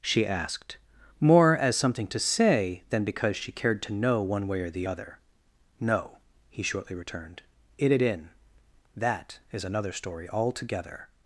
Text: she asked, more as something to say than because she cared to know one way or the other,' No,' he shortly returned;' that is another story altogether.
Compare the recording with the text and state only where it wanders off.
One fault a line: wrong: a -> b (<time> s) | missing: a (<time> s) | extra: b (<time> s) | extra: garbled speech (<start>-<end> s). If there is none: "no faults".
extra: it it in (7.8 s)